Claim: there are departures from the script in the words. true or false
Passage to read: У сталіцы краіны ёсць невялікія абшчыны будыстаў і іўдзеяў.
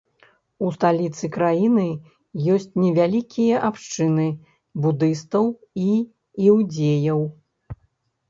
false